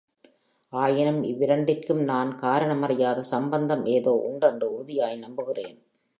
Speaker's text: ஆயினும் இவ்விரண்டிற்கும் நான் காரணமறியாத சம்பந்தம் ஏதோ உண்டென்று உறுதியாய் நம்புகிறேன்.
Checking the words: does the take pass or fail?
pass